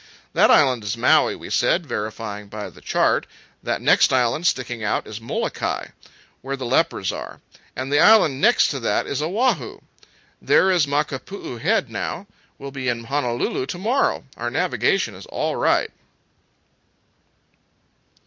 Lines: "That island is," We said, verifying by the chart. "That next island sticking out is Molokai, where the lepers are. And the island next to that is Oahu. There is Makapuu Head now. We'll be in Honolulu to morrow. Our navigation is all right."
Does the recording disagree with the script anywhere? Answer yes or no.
yes